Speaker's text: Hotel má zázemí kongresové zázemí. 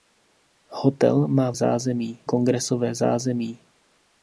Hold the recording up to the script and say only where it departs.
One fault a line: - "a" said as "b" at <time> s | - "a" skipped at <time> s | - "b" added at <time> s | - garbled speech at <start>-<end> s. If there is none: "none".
none